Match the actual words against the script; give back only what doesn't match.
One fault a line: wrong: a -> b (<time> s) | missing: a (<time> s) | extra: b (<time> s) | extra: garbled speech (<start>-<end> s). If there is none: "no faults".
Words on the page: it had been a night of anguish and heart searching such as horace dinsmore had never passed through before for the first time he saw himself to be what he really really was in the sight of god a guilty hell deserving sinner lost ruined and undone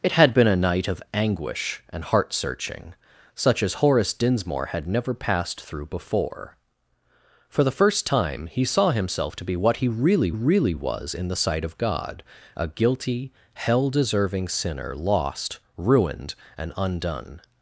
no faults